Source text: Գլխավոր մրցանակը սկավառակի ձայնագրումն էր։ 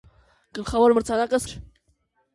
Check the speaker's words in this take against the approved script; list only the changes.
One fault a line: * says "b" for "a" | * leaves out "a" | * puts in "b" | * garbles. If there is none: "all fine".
* leaves out "սկավառակի ձայնագրումն"